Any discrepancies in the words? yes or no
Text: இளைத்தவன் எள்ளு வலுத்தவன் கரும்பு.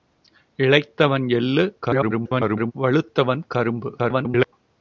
yes